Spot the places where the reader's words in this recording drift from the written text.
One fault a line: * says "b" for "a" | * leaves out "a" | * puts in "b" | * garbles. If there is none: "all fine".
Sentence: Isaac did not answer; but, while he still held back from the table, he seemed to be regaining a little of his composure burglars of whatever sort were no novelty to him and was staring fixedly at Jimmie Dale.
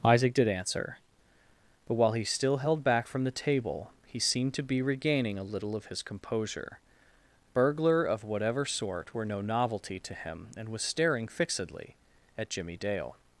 * leaves out "not"
* says "burglar" for "burglars"